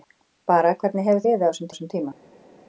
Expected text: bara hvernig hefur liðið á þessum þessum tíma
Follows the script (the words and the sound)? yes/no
yes